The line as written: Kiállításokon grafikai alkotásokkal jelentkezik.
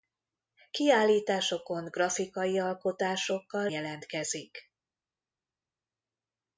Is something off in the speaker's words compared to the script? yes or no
no